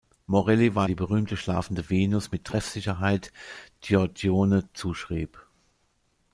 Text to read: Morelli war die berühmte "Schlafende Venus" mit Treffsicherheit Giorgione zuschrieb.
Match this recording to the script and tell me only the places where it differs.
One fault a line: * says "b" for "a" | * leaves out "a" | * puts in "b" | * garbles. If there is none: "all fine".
all fine